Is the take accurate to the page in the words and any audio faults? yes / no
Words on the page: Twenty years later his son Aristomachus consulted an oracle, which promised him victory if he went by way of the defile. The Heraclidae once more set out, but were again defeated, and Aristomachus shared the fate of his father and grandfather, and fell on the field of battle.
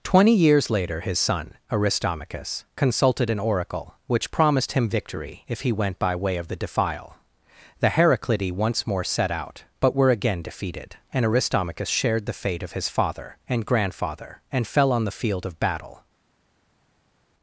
yes